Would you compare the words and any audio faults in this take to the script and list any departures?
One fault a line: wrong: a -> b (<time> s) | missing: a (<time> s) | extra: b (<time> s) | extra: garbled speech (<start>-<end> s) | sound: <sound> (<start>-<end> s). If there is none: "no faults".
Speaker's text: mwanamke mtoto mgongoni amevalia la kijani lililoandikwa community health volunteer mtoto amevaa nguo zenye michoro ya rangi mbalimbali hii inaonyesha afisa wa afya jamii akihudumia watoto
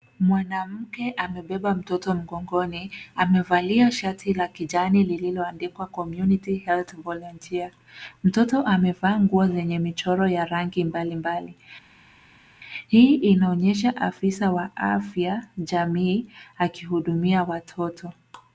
extra: amebeba (1.2 s)
extra: shati (3.9 s)